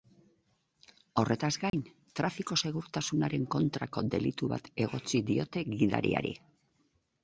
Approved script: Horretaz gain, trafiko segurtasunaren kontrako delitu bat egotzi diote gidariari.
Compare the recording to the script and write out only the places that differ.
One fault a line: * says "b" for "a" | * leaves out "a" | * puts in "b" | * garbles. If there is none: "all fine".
all fine